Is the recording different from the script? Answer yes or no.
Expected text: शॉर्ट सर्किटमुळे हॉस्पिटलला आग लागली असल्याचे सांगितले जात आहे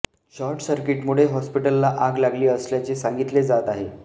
no